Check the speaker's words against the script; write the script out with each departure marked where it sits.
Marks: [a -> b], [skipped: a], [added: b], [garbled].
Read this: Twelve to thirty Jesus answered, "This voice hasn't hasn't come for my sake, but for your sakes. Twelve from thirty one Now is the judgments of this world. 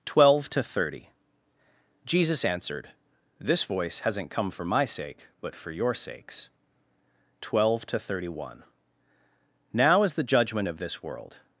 Twelve to thirty Jesus answered, "This voice hasn't [skipped: hasn't] come for my sake, but for your sakes. Twelve [from -> to] thirty one Now is the [judgments -> judgment] of this world.